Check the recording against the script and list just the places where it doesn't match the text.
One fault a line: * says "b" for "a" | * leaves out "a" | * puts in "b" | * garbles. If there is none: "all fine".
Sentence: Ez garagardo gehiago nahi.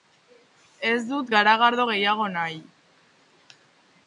* puts in "dut"